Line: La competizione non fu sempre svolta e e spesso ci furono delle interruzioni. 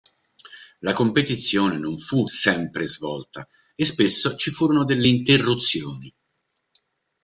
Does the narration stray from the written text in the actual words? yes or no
yes